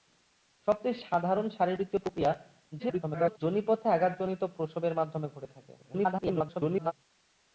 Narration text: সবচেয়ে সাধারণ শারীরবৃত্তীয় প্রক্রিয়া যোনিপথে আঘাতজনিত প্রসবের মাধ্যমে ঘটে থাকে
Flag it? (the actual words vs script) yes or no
yes